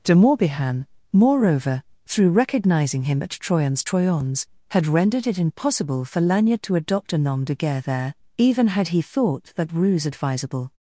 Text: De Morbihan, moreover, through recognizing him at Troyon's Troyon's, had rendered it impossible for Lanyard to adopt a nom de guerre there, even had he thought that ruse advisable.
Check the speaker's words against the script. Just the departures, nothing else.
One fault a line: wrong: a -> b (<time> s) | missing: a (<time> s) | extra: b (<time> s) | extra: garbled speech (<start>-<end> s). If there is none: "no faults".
no faults